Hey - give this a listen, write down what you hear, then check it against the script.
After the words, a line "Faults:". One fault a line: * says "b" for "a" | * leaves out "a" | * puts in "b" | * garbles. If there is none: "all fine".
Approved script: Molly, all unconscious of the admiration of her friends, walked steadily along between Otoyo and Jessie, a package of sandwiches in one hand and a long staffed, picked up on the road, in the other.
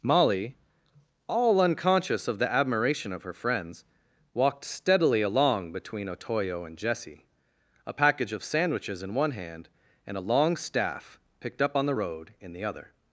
Molly, all unconscious of the admiration of her friends, walked steadily along between Otoyo and Jessie, a package of sandwiches in one hand and a long staff, picked up on the road, in the other.
Faults:
* says "staff" for "staffed"